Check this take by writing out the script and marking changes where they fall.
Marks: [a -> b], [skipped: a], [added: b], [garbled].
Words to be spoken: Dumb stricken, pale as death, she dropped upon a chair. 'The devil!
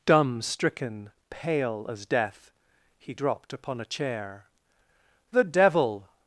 Dumb stricken, pale as death, [she -> he] dropped upon a chair. 'The devil!